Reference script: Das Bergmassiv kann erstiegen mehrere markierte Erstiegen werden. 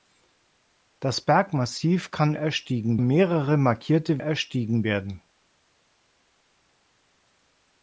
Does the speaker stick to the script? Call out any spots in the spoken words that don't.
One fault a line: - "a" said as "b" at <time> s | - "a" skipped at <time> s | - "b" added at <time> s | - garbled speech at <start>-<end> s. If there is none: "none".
none